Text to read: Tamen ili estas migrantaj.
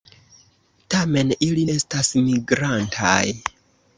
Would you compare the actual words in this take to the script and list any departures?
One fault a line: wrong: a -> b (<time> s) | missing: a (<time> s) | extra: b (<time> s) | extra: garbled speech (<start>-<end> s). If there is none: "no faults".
no faults